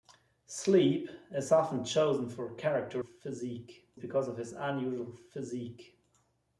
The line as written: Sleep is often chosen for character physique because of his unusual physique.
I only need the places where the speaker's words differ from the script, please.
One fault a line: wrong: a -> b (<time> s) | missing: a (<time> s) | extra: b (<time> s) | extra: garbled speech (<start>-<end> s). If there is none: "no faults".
no faults